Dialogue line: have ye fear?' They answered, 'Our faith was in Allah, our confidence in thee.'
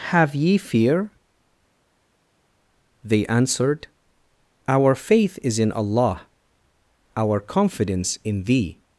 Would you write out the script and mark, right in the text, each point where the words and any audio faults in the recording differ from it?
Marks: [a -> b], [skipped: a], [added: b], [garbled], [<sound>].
have ye fear?' They answered, 'Our faith [was -> is] in Allah, our confidence in thee.'